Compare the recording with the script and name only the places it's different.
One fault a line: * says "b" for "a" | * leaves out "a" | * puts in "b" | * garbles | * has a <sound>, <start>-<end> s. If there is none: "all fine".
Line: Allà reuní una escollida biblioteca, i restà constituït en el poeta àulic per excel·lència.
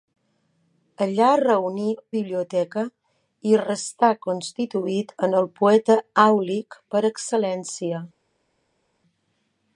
* leaves out "una escollida"